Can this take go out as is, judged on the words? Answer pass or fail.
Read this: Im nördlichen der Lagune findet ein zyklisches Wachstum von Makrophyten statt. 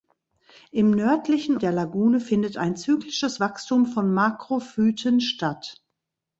pass